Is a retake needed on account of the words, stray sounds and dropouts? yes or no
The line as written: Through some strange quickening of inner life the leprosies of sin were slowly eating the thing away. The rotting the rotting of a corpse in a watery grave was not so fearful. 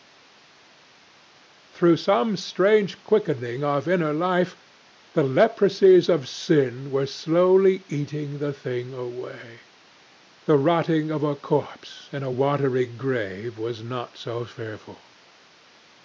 yes